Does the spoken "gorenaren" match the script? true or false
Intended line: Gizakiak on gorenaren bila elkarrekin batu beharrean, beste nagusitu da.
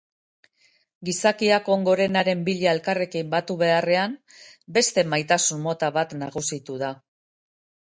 true